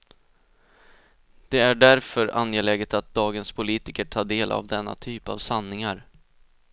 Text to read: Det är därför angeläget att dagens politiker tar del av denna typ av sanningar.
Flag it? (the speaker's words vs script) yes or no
no